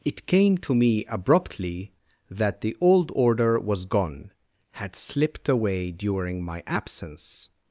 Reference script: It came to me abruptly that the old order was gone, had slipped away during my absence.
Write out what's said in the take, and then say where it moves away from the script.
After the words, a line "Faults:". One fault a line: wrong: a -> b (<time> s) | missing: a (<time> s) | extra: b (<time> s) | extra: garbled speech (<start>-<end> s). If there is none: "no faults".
It came to me abruptly that the old order was gone, had slipped away during my absence.
Faults:
no faults